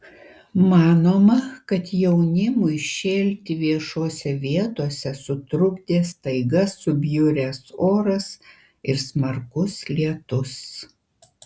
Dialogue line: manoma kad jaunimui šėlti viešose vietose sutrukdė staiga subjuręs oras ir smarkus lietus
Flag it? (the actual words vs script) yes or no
no